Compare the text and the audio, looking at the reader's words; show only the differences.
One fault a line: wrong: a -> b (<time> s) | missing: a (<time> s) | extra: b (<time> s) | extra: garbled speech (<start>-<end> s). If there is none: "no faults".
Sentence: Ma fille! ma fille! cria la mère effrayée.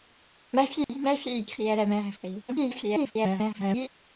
extra: garbled speech (2.5-3.9 s)